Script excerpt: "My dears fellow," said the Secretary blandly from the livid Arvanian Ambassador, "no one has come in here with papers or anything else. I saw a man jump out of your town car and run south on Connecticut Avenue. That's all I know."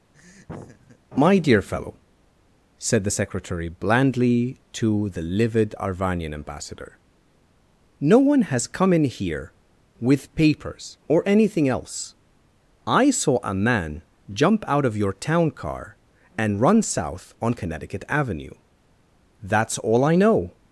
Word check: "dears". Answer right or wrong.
wrong